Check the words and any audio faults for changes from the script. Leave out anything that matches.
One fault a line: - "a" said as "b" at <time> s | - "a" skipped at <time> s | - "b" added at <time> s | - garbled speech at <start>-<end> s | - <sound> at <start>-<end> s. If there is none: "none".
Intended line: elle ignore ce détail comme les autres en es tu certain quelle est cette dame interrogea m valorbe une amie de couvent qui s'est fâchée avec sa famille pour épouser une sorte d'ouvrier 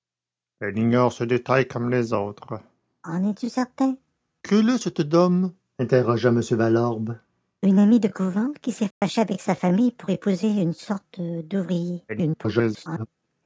- dropout at 8.9-9.0 s
- garbled speech at 12.1-13.1 s